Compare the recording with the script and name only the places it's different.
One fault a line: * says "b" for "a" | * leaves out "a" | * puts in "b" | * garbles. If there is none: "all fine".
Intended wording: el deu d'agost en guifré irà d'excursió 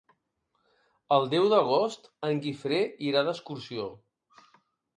all fine